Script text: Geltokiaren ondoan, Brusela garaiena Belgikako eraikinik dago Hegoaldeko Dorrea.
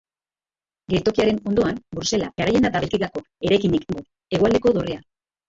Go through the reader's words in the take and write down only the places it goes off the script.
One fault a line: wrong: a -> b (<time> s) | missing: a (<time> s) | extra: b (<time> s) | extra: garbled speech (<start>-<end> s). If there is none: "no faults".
no faults